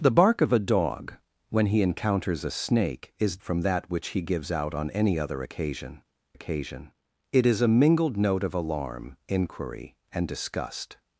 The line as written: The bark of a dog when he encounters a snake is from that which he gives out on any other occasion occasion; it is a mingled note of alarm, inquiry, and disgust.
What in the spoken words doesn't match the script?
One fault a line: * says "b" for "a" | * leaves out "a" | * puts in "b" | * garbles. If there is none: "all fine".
all fine